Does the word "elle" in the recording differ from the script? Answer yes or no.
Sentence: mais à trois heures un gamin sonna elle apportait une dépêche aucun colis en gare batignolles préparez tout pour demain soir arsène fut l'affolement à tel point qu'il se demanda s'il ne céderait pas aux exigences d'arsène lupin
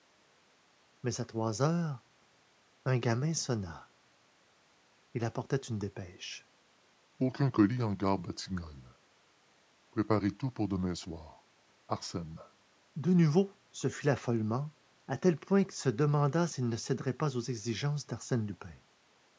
yes